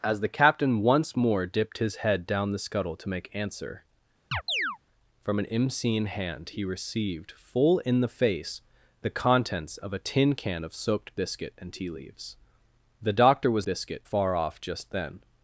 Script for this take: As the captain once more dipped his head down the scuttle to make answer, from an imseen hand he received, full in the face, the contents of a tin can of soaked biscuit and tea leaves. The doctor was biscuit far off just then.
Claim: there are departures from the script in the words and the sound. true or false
true